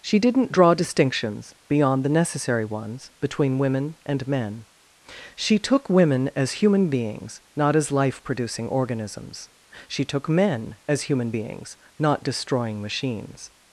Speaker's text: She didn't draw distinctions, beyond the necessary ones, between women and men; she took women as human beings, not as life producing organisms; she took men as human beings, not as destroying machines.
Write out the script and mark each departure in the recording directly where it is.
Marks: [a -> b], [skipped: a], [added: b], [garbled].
She didn't draw distinctions, beyond the necessary ones, between women and men; she took women as human beings, not as life producing organisms; she took men as human beings, not [skipped: as] destroying machines.